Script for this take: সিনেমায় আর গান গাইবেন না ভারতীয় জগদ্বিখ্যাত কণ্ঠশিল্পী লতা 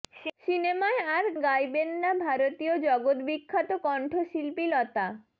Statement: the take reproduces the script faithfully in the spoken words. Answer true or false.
false